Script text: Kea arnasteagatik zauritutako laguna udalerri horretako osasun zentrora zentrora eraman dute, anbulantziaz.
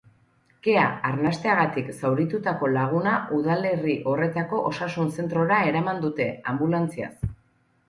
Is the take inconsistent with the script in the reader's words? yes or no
yes